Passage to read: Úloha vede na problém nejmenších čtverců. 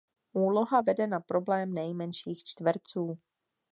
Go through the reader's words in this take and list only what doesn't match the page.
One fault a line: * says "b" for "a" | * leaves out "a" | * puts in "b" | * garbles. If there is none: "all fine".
all fine